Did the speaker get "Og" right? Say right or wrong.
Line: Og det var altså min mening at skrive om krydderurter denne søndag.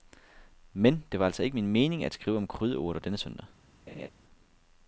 wrong